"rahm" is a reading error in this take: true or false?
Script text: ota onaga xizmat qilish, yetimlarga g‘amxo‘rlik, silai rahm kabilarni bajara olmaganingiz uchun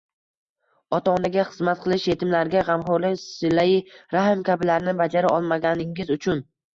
false